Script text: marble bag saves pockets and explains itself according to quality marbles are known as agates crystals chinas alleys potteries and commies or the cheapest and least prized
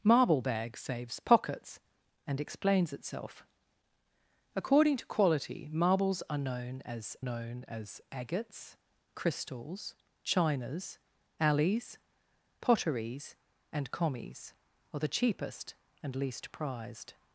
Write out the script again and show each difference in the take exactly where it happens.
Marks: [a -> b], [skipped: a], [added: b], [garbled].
marble bag saves pockets and explains itself according to quality marbles are known as [added: known as] agates crystals chinas alleys potteries and commies or the cheapest and least prized